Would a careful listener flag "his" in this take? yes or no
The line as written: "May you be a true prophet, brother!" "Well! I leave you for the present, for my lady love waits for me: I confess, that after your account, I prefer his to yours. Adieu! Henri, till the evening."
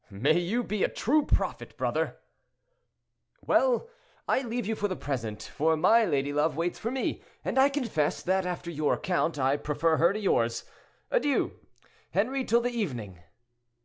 yes